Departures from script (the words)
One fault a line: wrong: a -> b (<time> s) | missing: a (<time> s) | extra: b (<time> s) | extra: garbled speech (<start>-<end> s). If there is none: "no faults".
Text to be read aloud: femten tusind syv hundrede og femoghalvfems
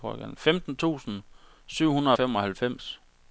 no faults